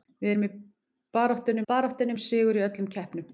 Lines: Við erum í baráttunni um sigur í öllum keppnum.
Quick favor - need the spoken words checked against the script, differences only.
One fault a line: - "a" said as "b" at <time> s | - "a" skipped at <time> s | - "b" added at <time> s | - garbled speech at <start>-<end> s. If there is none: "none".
- "baráttunni" added at 1.7 s